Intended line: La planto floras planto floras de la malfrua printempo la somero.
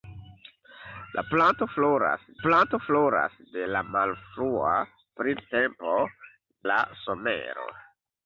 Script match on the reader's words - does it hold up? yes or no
yes